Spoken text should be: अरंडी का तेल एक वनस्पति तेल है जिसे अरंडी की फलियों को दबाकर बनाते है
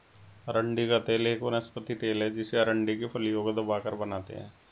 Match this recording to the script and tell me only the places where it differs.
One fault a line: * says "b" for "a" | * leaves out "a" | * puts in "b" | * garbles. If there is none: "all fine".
all fine